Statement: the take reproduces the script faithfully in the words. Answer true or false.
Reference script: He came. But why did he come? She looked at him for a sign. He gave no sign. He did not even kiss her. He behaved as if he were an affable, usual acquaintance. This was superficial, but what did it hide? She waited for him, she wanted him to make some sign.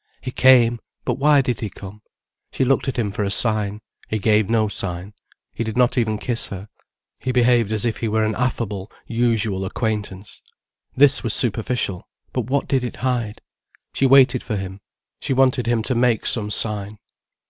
true